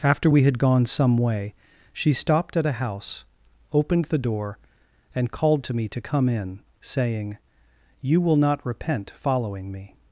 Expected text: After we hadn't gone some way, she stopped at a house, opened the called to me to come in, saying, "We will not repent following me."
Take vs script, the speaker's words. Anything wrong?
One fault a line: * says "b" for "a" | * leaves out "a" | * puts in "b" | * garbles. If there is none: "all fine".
* says "had" for "hadn't"
* puts in "door and"
* says "You" for "We"